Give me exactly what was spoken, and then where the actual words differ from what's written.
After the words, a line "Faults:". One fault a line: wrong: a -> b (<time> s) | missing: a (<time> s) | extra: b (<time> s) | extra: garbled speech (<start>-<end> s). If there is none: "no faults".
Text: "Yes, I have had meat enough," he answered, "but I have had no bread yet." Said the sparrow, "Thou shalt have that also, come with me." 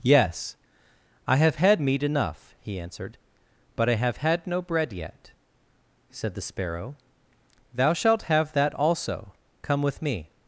"Yes, I have had meat enough," he answered, "but I have had no bread yet." Said the sparrow, "Thou shalt have that also, come with me."
Faults:
no faults